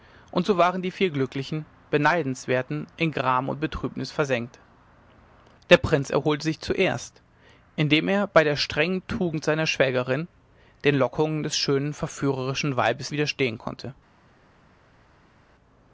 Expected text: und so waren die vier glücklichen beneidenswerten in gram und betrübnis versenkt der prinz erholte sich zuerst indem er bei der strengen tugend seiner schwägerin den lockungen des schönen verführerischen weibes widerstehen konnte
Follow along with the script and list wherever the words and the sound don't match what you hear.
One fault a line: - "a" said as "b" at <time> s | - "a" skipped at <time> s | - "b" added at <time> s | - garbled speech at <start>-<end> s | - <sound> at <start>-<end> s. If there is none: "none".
none